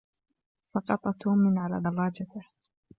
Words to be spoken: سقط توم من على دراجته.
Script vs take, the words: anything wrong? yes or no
no